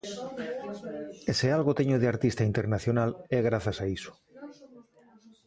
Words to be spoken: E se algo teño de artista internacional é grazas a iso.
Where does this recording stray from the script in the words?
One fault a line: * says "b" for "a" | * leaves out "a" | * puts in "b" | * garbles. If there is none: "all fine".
all fine